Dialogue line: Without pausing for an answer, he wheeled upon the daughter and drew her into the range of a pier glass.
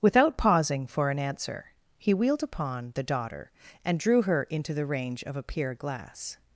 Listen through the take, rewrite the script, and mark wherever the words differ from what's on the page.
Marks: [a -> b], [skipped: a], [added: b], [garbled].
Without pausing for an answer, he wheeled upon the daughter and drew her into the range of a pier glass.